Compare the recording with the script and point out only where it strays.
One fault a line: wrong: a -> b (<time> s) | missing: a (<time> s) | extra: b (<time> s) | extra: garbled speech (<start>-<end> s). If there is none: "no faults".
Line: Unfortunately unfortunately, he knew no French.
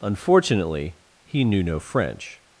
missing: unfortunately (1.0 s)